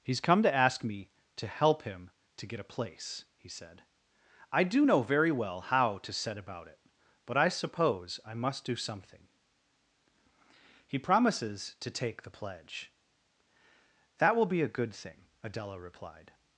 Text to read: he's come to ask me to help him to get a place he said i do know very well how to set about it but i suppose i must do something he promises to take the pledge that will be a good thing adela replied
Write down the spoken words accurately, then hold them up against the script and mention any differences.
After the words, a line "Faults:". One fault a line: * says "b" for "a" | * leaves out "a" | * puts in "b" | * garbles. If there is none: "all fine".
he's come to ask me to help him to get a place he said i do know very well how to set about it but i suppose i must do something he promises to take the pledge that will be a good thing adela replied
Faults:
all fine